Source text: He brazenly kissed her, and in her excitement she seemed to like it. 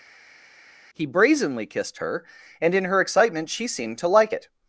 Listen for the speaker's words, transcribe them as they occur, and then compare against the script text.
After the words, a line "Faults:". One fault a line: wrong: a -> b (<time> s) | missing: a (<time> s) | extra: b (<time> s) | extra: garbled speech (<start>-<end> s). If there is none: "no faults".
He brazenly kissed her, and in her excitement she seemed to like it.
Faults:
no faults